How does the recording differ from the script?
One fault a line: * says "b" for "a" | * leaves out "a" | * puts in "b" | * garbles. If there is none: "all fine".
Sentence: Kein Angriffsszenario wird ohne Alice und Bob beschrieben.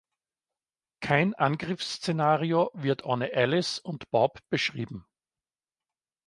all fine